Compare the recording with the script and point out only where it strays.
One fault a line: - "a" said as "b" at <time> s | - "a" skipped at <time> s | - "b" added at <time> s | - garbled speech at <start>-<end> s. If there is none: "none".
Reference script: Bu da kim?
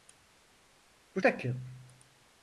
none